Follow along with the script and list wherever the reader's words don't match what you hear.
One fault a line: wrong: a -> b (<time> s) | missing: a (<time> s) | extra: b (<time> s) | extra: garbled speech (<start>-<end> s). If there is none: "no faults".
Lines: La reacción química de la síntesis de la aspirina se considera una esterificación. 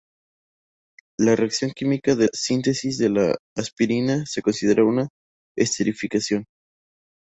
missing: la (2.3 s)